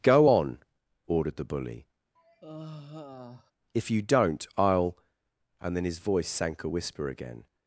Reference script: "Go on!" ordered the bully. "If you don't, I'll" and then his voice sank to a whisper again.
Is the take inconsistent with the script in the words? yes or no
yes